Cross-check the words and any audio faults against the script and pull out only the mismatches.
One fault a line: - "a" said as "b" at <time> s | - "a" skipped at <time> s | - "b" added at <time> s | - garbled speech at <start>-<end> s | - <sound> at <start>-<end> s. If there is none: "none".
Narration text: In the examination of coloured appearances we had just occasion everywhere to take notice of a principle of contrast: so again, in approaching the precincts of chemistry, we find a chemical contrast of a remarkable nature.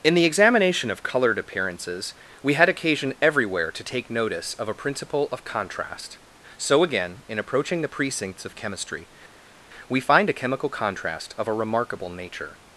- "just" skipped at 2.7 s